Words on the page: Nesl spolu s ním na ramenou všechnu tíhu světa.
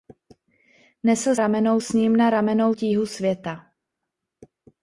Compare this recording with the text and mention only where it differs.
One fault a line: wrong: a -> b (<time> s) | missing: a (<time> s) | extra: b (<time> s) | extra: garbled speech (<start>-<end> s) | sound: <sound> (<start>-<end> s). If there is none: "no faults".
wrong: spolu -> ramenou (1.4 s)
missing: všechnu (2.7 s)